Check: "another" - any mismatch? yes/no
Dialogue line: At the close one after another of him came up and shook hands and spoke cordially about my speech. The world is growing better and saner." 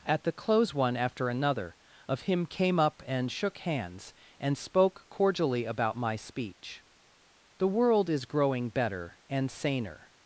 no